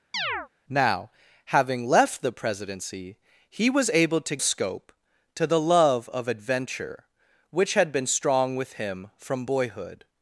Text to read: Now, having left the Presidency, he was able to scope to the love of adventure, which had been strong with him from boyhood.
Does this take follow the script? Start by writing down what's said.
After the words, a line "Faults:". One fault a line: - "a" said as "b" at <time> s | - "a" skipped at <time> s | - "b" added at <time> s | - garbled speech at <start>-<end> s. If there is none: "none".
Now, having left the Presidency, he was able to scope to the love of adventure, which had been strong with him from boyhood.
Faults:
none